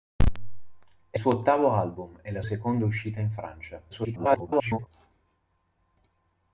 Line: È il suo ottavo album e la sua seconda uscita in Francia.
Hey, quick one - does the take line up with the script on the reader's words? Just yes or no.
no